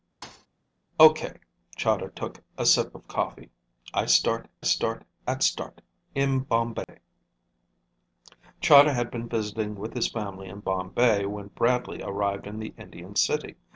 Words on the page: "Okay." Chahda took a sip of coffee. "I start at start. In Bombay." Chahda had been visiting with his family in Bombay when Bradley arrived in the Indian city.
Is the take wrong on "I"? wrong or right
right